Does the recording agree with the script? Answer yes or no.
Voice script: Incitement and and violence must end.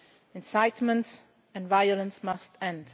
no